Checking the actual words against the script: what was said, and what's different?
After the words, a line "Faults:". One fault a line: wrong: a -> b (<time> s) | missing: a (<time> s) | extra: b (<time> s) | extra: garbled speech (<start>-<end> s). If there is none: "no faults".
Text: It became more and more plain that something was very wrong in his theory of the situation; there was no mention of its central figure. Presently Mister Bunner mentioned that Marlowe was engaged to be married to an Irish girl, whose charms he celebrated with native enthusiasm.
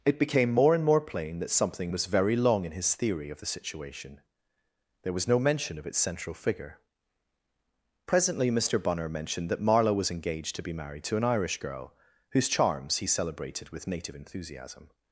It became more and more plain that something was very long in his theory of the situation; there was no mention of its central figure. Presently Mister Bunner mentioned that Marlowe was engaged to be married to an Irish girl, whose charms he celebrated with native enthusiasm.
Faults:
wrong: wrong -> long (2.4 s)